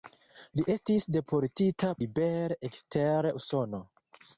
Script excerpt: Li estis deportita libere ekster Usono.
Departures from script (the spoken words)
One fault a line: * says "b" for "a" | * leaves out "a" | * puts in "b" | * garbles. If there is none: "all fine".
all fine